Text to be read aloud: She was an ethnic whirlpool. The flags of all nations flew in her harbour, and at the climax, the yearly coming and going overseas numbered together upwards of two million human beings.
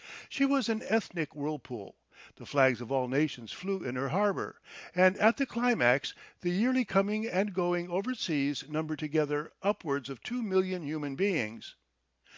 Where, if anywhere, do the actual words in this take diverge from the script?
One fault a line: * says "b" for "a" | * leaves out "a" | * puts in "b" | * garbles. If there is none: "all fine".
all fine